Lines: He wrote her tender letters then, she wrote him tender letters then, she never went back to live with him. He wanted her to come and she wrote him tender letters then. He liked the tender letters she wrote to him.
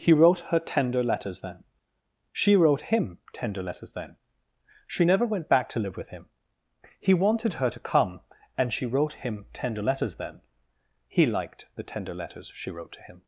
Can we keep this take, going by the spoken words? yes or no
yes